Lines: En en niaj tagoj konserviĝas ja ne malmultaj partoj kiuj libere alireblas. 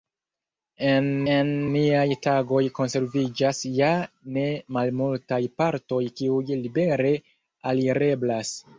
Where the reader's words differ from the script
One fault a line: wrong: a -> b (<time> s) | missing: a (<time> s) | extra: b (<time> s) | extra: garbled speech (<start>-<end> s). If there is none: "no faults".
no faults